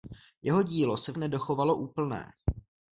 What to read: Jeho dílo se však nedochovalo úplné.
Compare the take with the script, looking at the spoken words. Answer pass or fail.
fail